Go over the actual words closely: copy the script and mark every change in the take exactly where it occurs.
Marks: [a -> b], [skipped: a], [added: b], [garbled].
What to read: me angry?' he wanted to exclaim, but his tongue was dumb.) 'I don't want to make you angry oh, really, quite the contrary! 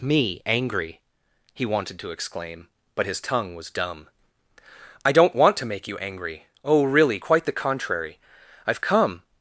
me angry?' he wanted to exclaim, but his tongue was dumb.) 'I don't want to make you angry oh, really, quite the contrary! [added: I've come]